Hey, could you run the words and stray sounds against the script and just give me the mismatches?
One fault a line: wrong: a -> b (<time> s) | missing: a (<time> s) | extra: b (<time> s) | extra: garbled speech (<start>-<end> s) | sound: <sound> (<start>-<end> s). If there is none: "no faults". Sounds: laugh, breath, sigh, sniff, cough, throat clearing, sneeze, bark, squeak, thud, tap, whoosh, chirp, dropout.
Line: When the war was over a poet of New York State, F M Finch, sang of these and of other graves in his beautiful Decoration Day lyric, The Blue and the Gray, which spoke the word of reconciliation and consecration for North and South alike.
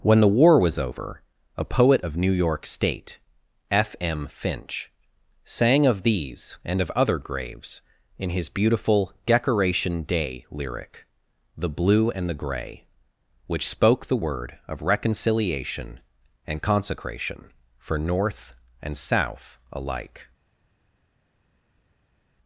no faults